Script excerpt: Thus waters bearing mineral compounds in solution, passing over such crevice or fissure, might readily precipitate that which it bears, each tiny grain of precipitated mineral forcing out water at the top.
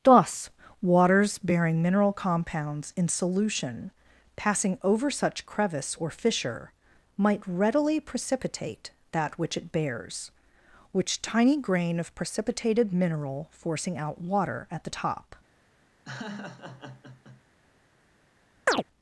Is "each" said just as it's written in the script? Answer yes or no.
no